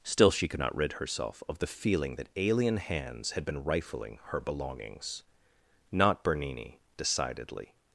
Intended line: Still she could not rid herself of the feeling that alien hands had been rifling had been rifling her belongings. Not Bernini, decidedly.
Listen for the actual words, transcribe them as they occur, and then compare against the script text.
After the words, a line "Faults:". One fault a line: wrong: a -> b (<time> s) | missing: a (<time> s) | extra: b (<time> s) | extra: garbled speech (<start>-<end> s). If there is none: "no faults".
Still she could not rid herself of the feeling that alien hands had been rifling her belongings. Not Bernini, decidedly.
Faults:
missing: had been rifling (4.2 s)